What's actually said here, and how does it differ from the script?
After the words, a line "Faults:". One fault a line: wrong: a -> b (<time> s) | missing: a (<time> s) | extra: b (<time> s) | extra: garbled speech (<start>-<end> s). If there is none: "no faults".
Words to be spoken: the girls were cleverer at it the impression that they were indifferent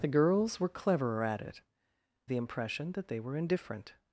the girls were cleverer at it the impression that they were indifferent
Faults:
no faults